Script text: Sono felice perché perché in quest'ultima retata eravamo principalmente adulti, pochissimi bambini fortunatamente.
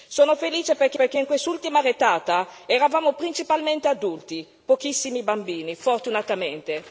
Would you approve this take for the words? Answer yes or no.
yes